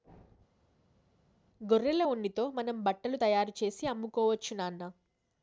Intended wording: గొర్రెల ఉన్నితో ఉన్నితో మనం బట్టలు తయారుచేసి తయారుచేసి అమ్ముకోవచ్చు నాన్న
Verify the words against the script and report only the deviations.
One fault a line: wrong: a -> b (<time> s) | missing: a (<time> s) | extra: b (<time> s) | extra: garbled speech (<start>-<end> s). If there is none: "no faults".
missing: ఉన్నితో (2.4 s)
missing: తయారుచేసి (3.8 s)